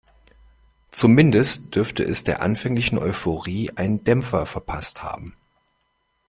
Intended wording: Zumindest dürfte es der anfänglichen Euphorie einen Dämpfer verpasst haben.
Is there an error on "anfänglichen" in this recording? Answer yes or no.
no